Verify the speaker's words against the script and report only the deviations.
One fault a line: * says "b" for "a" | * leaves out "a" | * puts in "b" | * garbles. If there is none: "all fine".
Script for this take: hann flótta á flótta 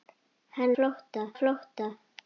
all fine